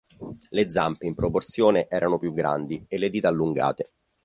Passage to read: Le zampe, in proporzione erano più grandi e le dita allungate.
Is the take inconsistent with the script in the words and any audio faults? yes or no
no